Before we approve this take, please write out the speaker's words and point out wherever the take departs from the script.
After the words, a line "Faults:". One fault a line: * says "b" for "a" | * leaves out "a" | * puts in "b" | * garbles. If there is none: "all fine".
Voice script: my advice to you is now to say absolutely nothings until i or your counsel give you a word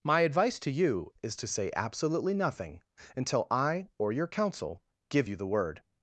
my advice to you is to say absolutely nothing until i or your counsel give you the word
Faults:
* leaves out "now"
* says "nothing" for "nothings"
* says "the" for "a"